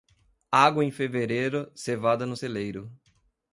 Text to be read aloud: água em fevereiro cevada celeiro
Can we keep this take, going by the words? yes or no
no